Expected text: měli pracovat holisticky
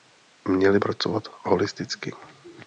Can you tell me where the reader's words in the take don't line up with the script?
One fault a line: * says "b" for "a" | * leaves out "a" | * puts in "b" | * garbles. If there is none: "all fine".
all fine